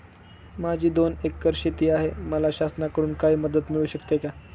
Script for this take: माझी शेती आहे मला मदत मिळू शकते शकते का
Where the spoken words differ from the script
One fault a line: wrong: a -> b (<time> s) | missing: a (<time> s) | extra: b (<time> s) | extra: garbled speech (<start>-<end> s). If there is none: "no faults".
extra: दोन एकर (0.9 s)
extra: शासनाकडून काही (2.5 s)
missing: शकते (4.2 s)